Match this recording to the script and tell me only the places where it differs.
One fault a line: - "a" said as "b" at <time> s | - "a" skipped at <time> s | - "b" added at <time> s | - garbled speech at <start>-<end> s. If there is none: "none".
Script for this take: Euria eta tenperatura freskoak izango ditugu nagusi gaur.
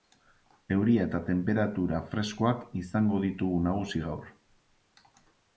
none